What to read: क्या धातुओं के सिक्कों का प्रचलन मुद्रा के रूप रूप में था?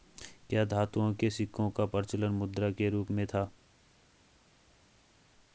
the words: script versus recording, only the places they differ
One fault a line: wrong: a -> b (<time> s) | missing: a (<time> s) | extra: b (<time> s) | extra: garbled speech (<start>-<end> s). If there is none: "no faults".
missing: रूप (3.1 s)